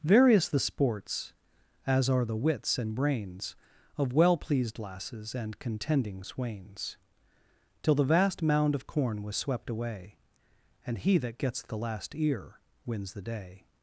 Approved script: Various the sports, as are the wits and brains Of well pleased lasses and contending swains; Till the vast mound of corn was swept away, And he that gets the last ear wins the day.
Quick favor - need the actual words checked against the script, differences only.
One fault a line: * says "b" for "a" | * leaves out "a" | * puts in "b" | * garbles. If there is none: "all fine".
all fine